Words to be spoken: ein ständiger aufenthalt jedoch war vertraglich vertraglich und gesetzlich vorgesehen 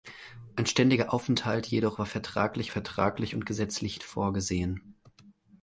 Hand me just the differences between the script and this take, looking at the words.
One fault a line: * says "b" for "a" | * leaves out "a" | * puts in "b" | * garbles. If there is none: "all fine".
all fine